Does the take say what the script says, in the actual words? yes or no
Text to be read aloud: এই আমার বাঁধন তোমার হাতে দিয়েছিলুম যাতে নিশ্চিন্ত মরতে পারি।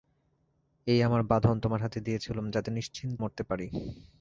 yes